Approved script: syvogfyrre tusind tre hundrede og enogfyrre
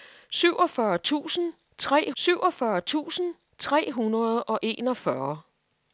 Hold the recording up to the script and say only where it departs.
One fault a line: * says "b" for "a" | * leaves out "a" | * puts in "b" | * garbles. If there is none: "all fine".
* puts in "syvogfyrre tusind tre"